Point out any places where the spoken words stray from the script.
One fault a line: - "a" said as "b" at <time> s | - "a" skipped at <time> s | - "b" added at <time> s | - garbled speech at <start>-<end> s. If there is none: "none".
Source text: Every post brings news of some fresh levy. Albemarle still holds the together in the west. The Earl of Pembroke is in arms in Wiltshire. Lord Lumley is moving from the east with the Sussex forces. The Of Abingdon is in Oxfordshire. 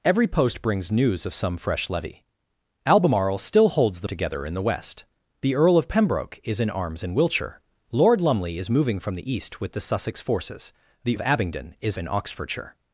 none